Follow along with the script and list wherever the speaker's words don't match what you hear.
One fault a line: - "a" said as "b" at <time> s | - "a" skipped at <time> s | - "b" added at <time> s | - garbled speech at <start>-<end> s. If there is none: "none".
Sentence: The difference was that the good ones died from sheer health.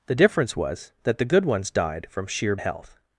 none